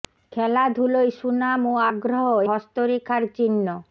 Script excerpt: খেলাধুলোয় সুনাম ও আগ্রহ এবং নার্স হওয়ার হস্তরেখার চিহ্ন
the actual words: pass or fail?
fail